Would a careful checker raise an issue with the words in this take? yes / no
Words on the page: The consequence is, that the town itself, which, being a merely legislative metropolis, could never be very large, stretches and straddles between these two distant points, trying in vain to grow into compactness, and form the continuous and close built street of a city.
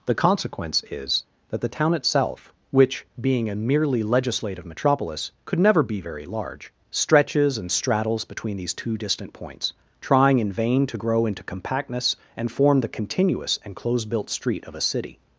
no